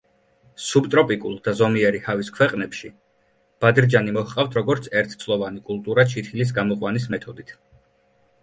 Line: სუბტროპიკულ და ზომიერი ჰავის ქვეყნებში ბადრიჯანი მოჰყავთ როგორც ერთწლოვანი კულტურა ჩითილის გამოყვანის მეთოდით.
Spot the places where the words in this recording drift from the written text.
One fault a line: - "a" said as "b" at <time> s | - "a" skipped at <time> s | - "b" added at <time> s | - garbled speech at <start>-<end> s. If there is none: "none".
none